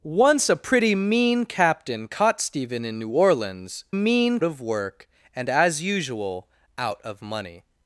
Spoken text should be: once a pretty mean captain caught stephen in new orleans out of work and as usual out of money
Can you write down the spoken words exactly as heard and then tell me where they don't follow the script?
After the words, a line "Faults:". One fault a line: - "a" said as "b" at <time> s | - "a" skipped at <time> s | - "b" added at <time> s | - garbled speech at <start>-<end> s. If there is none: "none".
once a pretty mean captain caught stephen in new orleans mean of work and as usual out of money
Faults:
- "out" said as "mean" at 3.9 s